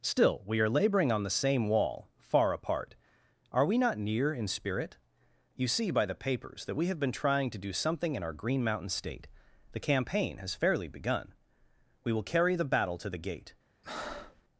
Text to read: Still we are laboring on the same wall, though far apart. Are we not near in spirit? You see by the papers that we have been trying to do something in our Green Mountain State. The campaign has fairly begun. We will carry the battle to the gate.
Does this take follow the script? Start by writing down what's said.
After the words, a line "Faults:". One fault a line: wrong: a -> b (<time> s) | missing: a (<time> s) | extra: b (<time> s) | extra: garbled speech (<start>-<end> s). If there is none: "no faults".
Still we are laboring on the same wall, far apart. Are we not near in spirit? You see by the papers that we have been trying to do something in our Green Mountain State. The campaign has fairly begun. We will carry the battle to the gate.
Faults:
missing: though (2.1 s)